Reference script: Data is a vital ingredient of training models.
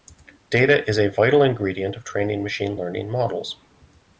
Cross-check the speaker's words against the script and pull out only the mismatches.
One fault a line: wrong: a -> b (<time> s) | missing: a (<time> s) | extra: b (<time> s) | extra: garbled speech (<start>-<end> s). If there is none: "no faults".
extra: machine learning (2.4 s)